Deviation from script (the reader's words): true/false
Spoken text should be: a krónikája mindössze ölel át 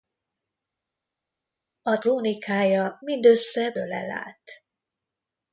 false